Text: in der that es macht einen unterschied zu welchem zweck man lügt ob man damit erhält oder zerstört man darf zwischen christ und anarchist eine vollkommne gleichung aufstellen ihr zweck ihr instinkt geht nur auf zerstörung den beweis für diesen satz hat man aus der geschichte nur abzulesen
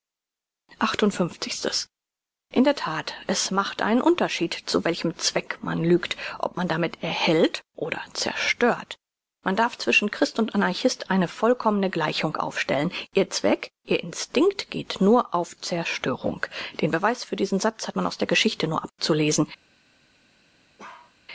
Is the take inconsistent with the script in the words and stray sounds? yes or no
yes